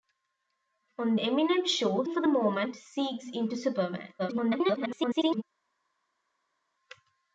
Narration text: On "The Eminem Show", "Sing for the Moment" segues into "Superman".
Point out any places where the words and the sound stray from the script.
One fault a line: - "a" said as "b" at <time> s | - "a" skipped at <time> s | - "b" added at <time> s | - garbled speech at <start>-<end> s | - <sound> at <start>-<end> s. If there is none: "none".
- "The" skipped at 1.1 s
- "Sing" skipped at 2.0 s
- garbled speech at 4.2-5.4 s